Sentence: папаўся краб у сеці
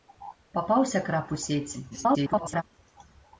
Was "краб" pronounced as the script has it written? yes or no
yes